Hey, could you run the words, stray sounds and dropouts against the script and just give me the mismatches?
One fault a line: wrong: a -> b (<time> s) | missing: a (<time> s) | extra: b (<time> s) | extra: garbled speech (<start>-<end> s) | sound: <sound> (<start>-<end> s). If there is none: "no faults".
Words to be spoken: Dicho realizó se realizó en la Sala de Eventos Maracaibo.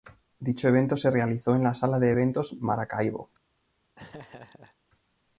wrong: realizó -> evento (0.7 s)
sound: laugh (4.0-4.8 s)